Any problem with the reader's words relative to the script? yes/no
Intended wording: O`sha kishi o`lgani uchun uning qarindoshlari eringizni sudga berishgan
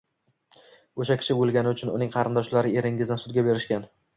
no